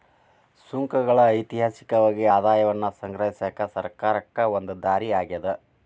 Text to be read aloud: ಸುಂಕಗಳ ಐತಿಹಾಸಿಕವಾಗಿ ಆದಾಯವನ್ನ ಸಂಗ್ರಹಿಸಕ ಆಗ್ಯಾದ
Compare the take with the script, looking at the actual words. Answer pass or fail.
fail